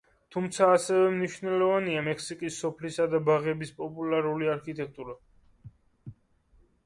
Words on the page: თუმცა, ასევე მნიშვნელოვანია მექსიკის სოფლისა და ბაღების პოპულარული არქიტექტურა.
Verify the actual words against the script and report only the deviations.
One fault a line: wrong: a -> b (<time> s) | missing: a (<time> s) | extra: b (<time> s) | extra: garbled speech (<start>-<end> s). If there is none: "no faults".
no faults